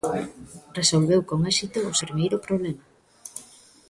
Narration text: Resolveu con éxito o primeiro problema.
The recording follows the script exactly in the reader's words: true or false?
true